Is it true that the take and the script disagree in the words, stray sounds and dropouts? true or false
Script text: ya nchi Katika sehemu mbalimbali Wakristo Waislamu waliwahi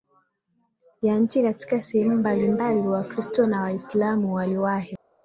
true